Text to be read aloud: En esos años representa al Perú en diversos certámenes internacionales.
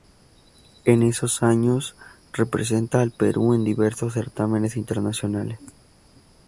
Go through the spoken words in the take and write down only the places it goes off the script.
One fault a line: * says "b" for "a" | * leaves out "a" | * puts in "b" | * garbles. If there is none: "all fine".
all fine